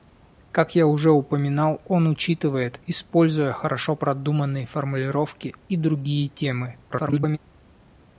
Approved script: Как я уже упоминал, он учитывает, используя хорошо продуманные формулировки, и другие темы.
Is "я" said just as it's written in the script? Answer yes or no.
yes